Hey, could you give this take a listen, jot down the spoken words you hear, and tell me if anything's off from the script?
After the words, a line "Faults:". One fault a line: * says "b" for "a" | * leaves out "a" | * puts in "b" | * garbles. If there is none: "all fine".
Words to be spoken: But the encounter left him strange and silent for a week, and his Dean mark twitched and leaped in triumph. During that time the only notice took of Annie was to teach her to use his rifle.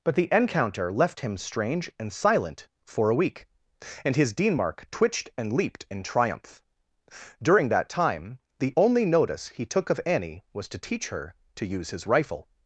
But the encounter left him strange and silent for a week, and his Dean mark twitched and leaped in triumph. During that time the only notice he took of Annie was to teach her to use his rifle.
Faults:
* puts in "he"